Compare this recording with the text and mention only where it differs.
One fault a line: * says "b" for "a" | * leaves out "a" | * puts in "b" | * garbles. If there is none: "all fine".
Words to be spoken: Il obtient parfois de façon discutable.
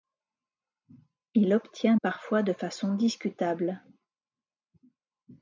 all fine